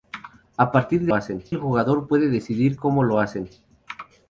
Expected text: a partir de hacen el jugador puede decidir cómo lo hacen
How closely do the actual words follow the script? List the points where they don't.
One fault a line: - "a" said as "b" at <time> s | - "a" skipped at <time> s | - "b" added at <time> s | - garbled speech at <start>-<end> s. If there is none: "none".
none